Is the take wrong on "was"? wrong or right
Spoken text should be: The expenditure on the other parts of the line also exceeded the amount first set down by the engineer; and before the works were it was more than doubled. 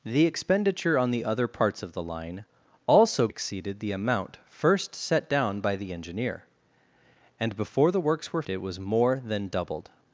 right